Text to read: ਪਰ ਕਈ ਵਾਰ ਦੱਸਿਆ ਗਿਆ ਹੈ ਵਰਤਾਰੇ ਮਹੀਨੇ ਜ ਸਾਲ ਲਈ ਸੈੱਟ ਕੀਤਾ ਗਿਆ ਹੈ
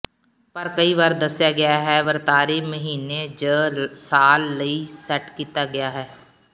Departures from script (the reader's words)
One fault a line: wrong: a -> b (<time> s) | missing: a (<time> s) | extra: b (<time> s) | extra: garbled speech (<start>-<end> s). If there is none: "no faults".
no faults